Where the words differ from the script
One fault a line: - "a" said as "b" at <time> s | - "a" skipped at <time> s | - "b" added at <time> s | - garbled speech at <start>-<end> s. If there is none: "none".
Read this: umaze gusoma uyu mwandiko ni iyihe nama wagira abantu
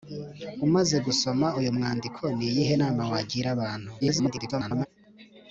- garbled speech at 4.0-4.9 s